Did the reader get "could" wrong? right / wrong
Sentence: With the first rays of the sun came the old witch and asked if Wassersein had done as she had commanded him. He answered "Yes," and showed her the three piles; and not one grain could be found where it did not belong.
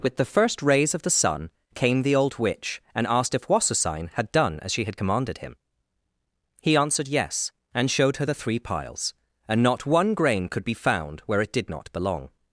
right